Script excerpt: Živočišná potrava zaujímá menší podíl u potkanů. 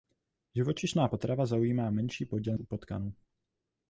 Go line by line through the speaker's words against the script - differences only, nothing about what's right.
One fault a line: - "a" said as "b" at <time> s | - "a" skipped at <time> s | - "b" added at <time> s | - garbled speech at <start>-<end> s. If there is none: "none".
none